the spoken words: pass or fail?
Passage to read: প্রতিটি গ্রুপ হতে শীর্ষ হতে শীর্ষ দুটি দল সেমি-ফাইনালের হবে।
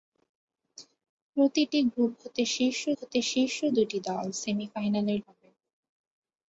pass